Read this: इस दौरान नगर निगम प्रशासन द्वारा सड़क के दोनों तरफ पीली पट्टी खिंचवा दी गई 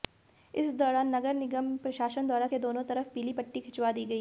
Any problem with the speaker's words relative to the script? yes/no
yes